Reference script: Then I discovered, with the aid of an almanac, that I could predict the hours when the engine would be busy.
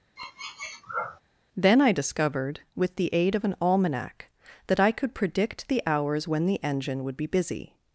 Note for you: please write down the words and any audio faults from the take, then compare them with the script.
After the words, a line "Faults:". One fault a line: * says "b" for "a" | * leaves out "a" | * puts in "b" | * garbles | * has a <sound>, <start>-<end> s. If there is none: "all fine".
Then I discovered, with the aid of an almanac, that I could predict the hours when the engine would be busy.
Faults:
* has a sniff, 0.2-1.2 s